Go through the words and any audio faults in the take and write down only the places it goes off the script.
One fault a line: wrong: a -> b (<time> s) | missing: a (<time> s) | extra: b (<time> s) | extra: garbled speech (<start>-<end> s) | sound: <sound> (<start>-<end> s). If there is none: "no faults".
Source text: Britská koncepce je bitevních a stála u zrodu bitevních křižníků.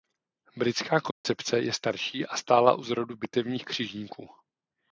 sound: dropout (1.1-1.2 s)
wrong: bitevních -> starší (1.7 s)